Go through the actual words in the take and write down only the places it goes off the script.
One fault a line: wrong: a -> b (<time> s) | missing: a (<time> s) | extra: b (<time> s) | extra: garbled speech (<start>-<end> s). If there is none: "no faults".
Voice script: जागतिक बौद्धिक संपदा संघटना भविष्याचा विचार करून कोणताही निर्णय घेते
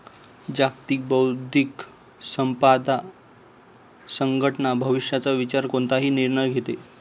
missing: करून (5.7 s)